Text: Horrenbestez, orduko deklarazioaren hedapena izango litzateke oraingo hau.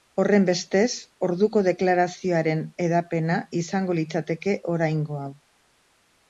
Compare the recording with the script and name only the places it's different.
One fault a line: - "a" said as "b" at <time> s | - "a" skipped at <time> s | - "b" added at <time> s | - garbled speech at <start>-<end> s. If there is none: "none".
none